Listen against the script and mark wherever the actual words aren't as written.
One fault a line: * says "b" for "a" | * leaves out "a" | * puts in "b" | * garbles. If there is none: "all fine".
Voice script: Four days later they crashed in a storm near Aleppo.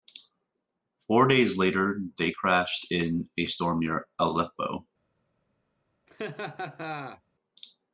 all fine